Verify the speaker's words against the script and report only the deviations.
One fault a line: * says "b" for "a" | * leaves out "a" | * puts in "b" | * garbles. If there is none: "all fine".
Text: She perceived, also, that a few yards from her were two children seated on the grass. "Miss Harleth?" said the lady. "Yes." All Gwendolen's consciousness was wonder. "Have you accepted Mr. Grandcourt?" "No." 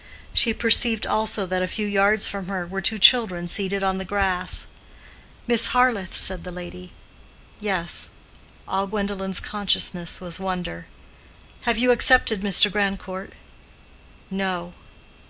all fine